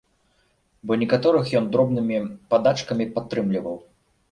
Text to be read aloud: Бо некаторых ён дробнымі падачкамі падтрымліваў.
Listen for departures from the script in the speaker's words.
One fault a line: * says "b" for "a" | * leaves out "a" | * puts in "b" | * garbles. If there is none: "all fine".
all fine